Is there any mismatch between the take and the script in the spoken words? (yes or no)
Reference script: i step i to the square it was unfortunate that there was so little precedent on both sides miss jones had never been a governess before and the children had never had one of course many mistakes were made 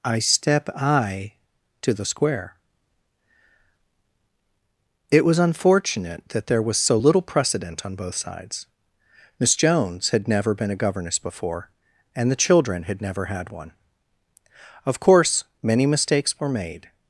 no